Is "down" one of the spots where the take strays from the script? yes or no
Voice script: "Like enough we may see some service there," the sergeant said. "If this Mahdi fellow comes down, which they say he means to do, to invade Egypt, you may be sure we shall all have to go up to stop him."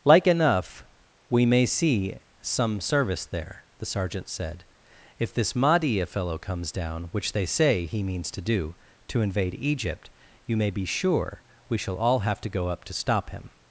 no